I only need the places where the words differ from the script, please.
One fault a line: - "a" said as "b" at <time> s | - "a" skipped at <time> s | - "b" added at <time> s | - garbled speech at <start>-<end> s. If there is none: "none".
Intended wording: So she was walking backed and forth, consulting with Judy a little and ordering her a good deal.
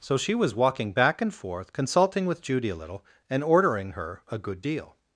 - "backed" said as "back" at 0.9 s